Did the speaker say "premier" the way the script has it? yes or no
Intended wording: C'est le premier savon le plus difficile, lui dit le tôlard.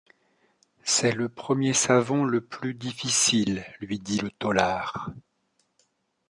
yes